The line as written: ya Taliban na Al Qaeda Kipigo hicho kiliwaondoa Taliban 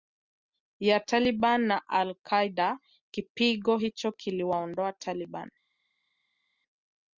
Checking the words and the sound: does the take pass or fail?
pass